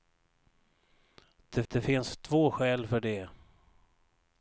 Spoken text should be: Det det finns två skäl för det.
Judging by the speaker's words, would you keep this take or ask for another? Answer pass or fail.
pass